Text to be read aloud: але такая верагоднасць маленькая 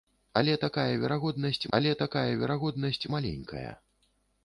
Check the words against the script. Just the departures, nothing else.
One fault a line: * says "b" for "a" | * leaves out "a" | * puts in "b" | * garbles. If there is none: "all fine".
* puts in "але такая верагоднасць"